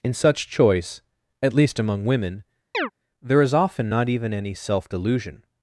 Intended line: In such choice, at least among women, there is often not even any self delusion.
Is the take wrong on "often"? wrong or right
right